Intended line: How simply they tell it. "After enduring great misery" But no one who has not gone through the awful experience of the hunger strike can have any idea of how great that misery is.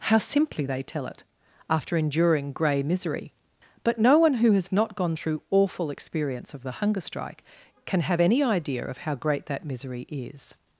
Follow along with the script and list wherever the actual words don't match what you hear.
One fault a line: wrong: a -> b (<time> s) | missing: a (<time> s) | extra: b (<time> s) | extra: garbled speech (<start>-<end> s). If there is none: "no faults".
wrong: great -> grey (2.5 s)
missing: the (5.4 s)